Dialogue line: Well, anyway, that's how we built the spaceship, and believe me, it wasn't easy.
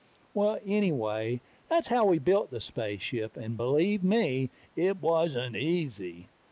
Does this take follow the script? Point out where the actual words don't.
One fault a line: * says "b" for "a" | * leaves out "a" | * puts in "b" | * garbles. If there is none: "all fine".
all fine